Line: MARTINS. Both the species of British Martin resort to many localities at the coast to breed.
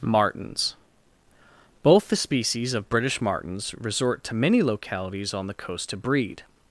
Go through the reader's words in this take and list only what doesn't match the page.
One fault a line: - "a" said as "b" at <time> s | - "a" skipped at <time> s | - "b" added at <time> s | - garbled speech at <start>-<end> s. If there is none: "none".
- "Martin" said as "Martins" at 3.2 s
- "at" said as "on" at 5.3 s